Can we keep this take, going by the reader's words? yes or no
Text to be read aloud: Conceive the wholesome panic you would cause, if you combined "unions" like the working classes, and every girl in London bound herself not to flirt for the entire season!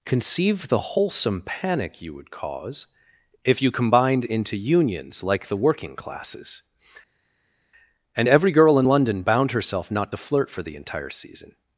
no